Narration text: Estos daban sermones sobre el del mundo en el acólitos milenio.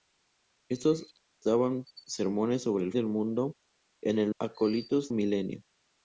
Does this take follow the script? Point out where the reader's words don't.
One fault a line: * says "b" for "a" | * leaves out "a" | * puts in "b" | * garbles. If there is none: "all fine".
all fine